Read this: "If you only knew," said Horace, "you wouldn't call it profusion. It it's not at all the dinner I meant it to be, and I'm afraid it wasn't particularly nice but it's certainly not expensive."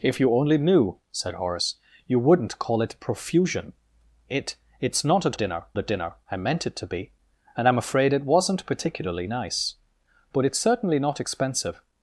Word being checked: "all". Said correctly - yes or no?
no